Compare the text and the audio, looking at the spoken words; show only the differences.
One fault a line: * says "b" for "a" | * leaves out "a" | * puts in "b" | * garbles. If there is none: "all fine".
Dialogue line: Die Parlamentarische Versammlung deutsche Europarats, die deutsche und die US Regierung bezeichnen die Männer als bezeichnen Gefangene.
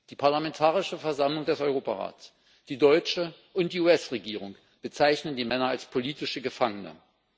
* says "des" for "deutsche"
* says "politische" for "bezeichnen"